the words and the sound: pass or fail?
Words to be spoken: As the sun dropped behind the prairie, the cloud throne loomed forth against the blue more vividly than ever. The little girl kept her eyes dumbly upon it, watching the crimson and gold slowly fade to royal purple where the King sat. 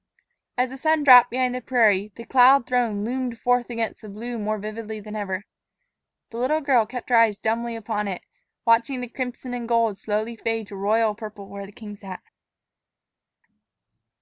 pass